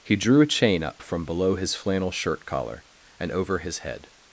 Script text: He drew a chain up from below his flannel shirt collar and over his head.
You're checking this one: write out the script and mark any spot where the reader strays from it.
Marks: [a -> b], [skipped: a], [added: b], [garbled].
He drew a chain up from below his flannel shirt collar and over his head.